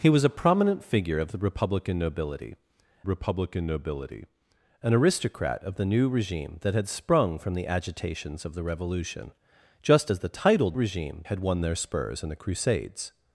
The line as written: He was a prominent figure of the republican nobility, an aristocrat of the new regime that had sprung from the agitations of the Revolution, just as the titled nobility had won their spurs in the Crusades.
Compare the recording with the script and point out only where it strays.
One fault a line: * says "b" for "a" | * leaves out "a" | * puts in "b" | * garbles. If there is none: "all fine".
* puts in "republican nobility"
* says "regime" for "nobility"